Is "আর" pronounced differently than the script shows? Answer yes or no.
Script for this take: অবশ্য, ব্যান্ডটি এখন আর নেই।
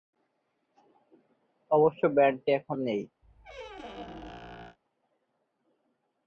yes